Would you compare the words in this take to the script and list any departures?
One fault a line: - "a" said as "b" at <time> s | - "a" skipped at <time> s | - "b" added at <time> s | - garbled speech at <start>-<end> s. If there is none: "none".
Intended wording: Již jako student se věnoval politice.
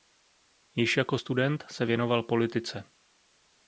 none